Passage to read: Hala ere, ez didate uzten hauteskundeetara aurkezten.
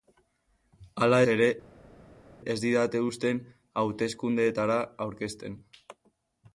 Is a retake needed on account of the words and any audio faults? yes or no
no